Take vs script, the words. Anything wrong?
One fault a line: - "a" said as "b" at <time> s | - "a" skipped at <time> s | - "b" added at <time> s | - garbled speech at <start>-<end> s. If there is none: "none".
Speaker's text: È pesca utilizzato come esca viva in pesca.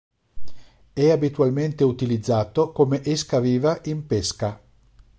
- "pesca" said as "abitualmente" at 1.1 s